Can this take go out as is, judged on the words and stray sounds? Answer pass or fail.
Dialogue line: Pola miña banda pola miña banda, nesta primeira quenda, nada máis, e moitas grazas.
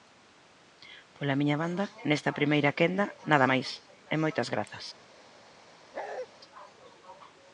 fail